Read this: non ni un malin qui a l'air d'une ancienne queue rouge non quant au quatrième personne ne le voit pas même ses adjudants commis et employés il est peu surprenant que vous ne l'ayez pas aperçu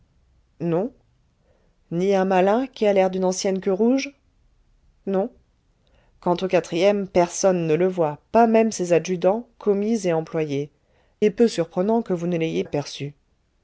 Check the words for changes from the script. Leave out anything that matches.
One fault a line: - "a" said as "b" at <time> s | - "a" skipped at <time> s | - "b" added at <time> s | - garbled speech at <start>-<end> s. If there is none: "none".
- "il" skipped at 10.7 s
- "pas" skipped at 12.6 s